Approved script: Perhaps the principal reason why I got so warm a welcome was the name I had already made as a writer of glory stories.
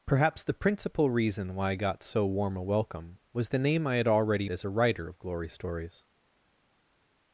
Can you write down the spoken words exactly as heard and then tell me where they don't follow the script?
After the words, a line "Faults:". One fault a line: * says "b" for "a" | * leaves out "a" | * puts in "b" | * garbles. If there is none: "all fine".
Perhaps the principal reason why I got so warm a welcome was the name I had already as a writer of glory stories.
Faults:
* leaves out "made"